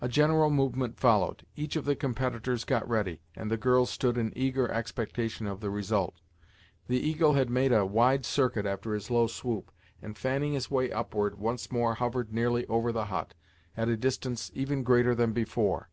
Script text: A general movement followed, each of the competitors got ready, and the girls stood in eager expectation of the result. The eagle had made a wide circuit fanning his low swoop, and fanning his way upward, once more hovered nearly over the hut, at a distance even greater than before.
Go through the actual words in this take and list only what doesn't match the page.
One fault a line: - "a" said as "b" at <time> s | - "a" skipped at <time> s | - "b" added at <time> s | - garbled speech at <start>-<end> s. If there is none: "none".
- "fanning" said as "after" at 8.7 s